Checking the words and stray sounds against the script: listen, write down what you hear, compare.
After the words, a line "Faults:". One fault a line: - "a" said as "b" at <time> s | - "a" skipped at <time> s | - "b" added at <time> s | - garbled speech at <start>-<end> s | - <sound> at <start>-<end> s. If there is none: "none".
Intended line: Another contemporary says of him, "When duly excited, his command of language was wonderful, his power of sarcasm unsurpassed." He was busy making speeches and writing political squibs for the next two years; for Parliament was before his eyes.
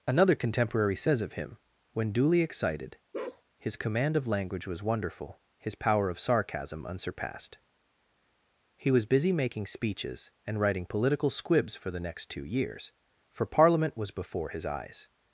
Another contemporary says of him, "When duly excited, his command of language was wonderful, his power of sarcasm unsurpassed." He was busy making speeches and writing political squibs for the next two years; for Parliament was before his eyes.
Faults:
- bark at 3.1-3.4 s